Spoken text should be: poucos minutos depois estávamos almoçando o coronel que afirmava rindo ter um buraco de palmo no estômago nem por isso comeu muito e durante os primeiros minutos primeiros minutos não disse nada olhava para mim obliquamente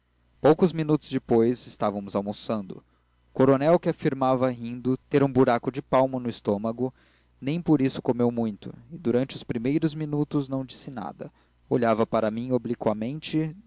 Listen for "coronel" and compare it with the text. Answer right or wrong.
right